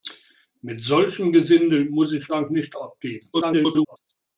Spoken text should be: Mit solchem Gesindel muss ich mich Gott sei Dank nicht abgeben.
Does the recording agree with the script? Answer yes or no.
no